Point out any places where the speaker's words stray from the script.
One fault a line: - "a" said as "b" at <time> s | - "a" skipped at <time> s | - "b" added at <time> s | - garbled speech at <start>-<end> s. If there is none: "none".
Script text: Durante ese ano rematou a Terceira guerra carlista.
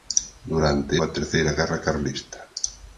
- "ese ano rematou" skipped at 0.9 s